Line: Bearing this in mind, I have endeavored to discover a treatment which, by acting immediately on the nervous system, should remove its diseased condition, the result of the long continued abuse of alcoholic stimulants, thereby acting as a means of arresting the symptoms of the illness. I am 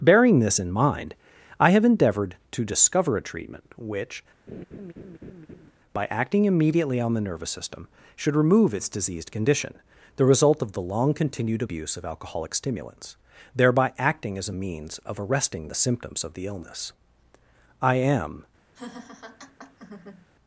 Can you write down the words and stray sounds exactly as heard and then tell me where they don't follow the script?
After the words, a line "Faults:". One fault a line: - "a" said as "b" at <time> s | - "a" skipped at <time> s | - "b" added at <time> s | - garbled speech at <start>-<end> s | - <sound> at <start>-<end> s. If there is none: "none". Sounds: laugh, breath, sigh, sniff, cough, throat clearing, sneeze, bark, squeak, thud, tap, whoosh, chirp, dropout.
Bearing this in mind, I have endeavored to discover a treatment which, by acting immediately on the nervous system, should remove its diseased condition, the result of the long continued abuse of alcoholic stimulants, thereby acting as a means of arresting the symptoms of the illness. I am
Faults:
- laugh at 4.5-5.7 s
- laugh at 18.7-20.3 s